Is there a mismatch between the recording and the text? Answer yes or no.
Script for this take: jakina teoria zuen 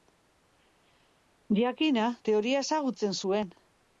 yes